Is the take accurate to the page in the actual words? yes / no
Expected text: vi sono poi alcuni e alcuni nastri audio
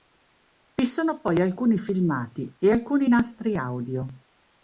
no